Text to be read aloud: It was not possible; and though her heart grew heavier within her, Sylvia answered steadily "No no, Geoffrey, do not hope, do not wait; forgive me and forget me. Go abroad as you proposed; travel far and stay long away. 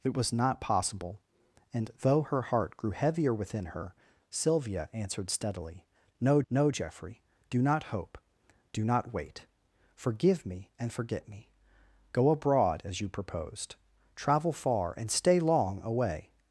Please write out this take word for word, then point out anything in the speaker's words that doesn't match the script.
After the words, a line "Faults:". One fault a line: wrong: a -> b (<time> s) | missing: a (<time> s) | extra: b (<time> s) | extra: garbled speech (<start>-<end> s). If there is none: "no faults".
It was not possible; and though her heart grew heavier within her, Sylvia answered steadily "No no, Geoffrey, do not hope, do not wait; forgive me and forget me. Go abroad as you proposed; travel far and stay long away.
Faults:
no faults